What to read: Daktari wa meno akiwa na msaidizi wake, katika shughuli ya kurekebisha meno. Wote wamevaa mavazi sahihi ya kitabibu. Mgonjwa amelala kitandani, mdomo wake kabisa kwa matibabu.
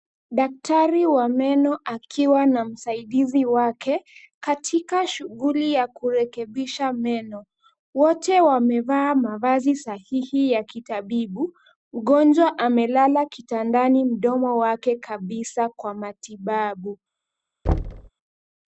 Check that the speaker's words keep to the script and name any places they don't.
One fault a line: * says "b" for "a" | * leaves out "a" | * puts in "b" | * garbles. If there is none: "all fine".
all fine